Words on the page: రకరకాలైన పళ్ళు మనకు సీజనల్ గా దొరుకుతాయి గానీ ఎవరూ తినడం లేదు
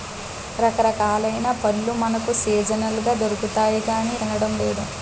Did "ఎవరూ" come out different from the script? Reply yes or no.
yes